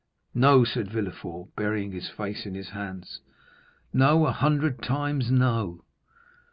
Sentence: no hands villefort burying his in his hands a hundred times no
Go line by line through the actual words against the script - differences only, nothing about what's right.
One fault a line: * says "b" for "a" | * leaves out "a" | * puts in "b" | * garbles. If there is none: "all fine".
* says "said" for "hands"
* puts in "face"
* puts in "no"